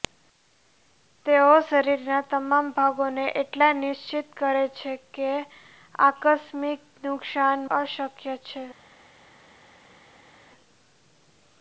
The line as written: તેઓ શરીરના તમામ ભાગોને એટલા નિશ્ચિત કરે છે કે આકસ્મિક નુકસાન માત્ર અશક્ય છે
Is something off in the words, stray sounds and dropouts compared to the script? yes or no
yes